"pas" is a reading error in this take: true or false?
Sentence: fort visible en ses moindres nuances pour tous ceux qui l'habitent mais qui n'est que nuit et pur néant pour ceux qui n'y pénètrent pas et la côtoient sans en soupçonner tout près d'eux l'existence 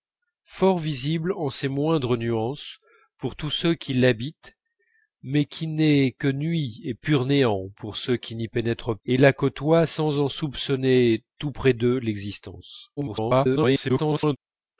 true